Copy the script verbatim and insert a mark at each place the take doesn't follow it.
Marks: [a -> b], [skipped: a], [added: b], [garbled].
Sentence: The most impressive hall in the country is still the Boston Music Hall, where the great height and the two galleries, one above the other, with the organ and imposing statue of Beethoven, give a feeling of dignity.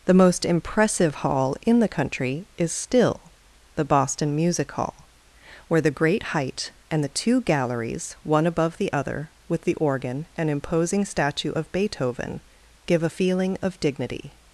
The most impressive hall in the country is still the Boston Music Hall, where the great height and the two galleries, one above the other, with the organ and imposing statue of Beethoven, give a feeling of dignity.